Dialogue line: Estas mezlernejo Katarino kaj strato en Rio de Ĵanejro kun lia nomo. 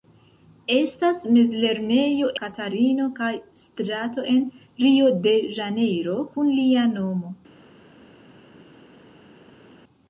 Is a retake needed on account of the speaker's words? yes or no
no